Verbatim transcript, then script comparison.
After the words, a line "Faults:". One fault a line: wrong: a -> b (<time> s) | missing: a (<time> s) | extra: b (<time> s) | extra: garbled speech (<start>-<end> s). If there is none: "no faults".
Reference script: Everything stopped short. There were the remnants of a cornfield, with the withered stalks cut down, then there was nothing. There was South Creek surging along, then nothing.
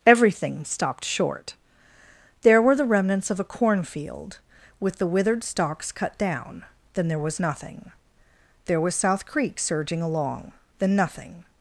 Everything stopped short. There were the remnants of a cornfield, with the withered stalks cut down, then there was nothing. There was South Creek surging along, then nothing.
Faults:
no faults